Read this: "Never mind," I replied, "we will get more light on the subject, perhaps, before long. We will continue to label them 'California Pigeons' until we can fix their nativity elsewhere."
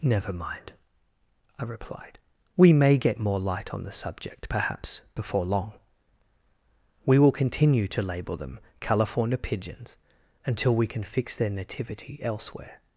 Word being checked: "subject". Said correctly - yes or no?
yes